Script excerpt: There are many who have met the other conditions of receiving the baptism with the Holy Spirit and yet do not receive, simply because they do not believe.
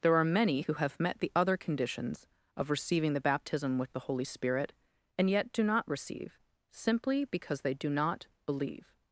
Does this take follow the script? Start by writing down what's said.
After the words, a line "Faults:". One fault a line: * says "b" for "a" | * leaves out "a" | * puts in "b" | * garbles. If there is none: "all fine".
There are many who have met the other conditions of receiving the baptism with the Holy Spirit and yet do not receive, simply because they do not believe.
Faults:
all fine